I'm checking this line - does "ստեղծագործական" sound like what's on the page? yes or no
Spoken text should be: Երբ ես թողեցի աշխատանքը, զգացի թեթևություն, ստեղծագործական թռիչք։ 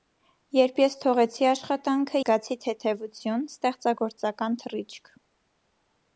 yes